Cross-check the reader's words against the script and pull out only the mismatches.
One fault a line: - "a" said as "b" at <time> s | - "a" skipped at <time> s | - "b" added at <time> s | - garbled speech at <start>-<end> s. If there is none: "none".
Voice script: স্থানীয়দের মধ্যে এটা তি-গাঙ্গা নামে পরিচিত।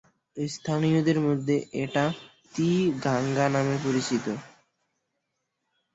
none